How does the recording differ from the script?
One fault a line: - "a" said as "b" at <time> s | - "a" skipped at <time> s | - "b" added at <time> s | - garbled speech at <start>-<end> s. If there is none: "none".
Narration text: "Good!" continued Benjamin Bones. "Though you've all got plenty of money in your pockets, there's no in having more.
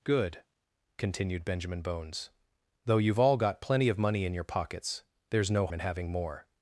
none